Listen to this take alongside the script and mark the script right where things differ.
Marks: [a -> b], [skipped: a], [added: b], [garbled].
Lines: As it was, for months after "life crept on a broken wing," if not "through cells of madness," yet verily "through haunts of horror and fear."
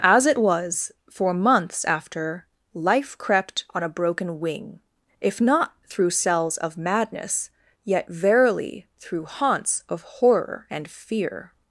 As it was, for months after "life crept on a broken wing," if not "through cells of madness," yet verily "through haunts of horror and fear."